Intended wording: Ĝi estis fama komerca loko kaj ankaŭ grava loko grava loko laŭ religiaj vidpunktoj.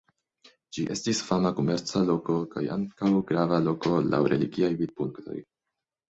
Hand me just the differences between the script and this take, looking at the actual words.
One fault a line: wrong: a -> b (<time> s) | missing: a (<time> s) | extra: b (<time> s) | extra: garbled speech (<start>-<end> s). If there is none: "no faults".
missing: grava loko (3.9 s)